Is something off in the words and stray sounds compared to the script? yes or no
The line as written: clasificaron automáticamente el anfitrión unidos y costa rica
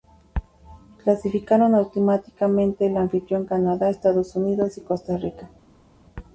yes